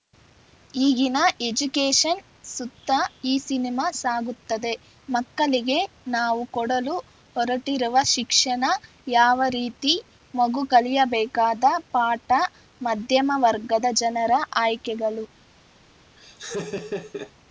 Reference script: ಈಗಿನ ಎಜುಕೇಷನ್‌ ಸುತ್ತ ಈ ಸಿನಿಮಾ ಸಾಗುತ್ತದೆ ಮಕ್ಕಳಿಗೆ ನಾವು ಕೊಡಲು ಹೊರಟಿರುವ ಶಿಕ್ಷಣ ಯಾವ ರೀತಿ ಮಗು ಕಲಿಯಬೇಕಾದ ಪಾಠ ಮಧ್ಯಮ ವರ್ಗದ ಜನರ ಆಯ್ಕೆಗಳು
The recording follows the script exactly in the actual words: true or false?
true